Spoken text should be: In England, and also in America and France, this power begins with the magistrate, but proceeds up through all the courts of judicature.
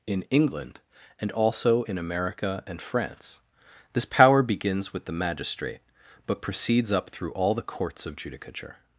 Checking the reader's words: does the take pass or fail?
pass